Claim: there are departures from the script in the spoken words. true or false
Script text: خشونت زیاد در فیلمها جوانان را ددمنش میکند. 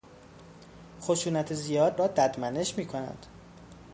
true